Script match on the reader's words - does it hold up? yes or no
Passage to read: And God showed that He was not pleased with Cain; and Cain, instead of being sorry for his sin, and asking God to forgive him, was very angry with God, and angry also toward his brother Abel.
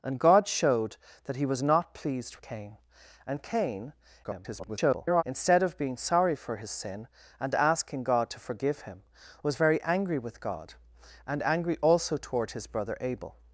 no